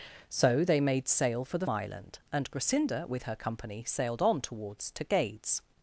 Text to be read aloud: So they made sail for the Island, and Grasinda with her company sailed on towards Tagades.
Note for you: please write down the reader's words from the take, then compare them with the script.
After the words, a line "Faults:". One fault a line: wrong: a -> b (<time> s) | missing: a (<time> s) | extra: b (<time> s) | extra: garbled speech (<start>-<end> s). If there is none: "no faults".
So they made sail for the Island, and Grasinda with her company sailed on towards Tagades.
Faults:
no faults